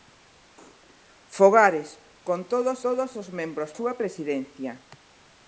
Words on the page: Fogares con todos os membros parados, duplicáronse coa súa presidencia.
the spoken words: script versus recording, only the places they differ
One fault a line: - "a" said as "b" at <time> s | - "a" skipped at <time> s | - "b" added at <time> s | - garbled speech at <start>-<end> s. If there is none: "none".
- "todos" added at 2.9 s
- "parados duplicáronse coa" skipped at 3.7 s